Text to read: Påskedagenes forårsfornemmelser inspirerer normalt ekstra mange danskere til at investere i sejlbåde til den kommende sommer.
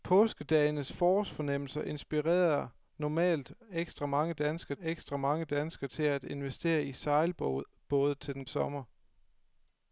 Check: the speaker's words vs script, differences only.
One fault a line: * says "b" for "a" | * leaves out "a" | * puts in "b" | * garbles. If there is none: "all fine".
* puts in "ekstra mange danskere"
* leaves out "kommende"